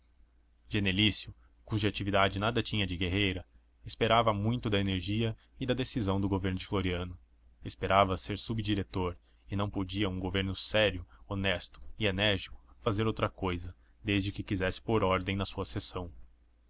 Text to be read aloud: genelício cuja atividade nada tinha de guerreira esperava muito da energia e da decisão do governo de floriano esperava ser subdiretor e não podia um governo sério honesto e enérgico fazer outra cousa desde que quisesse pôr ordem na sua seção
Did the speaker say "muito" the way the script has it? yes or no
yes